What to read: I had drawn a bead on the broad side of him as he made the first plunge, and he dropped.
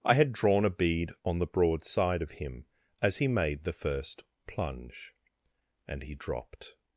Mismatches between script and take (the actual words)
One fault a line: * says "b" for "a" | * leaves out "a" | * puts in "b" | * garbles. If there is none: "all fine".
all fine